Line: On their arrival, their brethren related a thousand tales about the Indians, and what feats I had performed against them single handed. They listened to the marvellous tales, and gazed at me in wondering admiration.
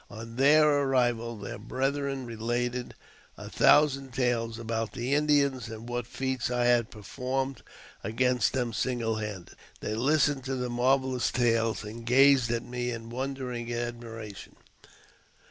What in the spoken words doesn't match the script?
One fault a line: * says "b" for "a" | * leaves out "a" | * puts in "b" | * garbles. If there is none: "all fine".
all fine